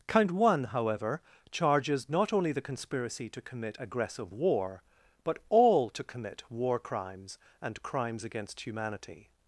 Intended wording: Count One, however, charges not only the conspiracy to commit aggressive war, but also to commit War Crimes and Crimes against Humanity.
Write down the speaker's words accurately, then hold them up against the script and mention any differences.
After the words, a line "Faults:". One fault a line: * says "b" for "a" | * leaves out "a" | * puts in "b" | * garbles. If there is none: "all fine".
Count One, however, charges not only the conspiracy to commit aggressive war, but all to commit War Crimes and Crimes against Humanity.
Faults:
* says "all" for "also"